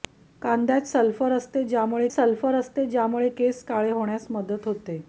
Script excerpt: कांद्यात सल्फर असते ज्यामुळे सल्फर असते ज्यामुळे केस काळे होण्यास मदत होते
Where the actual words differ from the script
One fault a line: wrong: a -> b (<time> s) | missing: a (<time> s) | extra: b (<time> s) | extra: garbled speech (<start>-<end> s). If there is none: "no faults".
no faults